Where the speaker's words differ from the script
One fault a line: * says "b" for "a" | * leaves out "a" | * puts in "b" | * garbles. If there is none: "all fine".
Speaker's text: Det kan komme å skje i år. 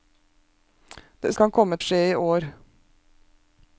all fine